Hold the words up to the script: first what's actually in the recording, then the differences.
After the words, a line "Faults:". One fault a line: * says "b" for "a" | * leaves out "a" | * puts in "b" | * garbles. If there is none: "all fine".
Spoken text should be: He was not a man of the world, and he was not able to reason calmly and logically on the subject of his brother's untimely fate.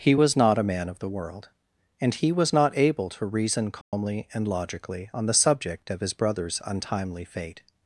He was not a man of the world, and he was not able to reason calmly and logically on the subject of his brother's untimely fate.
Faults:
all fine